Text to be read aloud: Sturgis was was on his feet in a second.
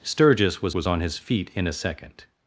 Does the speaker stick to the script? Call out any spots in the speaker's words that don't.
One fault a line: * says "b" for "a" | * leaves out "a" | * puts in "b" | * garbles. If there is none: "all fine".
all fine